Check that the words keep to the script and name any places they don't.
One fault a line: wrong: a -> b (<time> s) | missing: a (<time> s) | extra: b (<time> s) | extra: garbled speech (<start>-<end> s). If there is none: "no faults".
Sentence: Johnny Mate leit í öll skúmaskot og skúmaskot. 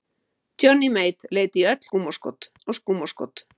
no faults